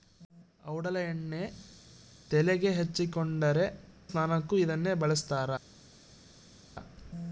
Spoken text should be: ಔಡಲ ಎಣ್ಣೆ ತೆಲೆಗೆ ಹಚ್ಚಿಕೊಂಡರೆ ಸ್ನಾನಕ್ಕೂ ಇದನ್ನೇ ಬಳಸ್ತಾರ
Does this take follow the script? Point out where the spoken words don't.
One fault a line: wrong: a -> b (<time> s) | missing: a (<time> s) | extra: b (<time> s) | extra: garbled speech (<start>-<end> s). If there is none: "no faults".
no faults